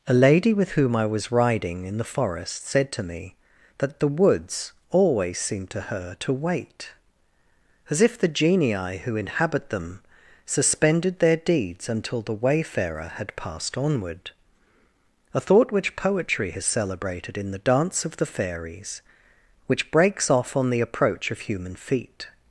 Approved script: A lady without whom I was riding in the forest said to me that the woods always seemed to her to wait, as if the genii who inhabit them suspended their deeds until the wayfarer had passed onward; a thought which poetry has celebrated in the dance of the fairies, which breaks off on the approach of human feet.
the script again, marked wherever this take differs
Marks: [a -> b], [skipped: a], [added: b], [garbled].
A lady [without -> with] whom I was riding in the forest said to me that the woods always seemed to her to wait, as if the genii who inhabit them suspended their deeds until the wayfarer had passed onward; a thought which poetry has celebrated in the dance of the fairies, which breaks off on the approach of human feet.